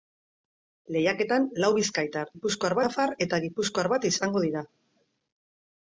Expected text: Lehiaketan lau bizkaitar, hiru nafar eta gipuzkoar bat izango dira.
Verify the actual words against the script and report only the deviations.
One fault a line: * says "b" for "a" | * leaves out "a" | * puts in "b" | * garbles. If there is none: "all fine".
* says "gipuzkoar" for "hiru"